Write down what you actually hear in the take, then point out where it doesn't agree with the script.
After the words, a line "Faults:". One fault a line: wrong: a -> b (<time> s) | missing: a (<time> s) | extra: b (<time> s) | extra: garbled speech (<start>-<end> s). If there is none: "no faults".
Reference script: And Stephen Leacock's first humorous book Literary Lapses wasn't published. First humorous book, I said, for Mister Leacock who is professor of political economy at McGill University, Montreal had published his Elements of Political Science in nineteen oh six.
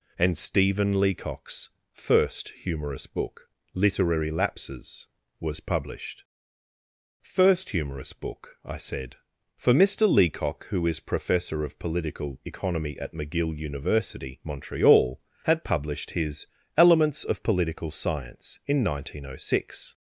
And Stephen Leacock's first humorous book Literary Lapses was published. First humorous book, I said, for Mister Leacock who is professor of political economy at McGill University, Montreal had published his Elements of Political Science in nineteen oh six.
Faults:
wrong: wasn't -> was (5.4 s)